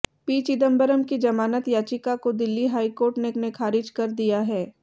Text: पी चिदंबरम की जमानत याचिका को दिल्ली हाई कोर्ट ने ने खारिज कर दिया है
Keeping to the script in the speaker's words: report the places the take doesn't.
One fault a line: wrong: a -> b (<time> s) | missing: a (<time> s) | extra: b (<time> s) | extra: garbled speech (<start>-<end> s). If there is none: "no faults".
no faults